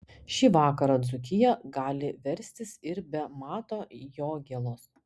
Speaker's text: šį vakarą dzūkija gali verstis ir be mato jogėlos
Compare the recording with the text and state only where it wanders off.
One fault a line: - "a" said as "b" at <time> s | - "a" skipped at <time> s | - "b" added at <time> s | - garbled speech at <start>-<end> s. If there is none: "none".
none